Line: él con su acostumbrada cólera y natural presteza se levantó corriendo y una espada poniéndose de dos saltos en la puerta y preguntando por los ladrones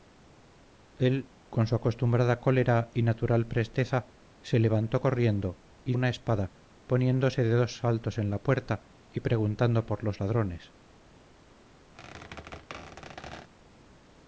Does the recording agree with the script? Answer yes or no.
yes